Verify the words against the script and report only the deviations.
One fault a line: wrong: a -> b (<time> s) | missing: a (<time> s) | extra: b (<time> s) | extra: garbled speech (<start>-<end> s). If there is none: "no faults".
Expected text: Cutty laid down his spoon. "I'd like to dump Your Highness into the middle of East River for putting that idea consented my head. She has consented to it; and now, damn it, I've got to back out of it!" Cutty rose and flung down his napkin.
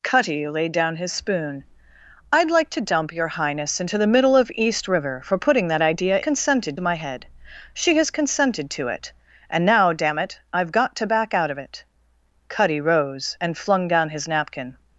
no faults